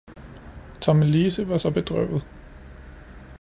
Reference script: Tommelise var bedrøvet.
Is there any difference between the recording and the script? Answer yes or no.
yes